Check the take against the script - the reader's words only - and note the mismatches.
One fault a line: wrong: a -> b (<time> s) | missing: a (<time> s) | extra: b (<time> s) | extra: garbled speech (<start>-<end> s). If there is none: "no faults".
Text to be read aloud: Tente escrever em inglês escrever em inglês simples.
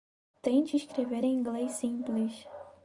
missing: escrever em inglês (1.7 s)